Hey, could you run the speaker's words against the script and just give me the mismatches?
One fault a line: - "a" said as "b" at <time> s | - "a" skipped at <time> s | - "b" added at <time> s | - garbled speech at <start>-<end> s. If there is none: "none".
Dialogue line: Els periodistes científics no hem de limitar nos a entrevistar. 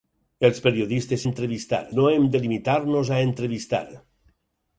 - "científics" said as "entrevistar" at 1.3 s